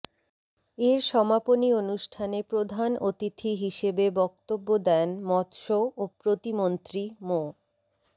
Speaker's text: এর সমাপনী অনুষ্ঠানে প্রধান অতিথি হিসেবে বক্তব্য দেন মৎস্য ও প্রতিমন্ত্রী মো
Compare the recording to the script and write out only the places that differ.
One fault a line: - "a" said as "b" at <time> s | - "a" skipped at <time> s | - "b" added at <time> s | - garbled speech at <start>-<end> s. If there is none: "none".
none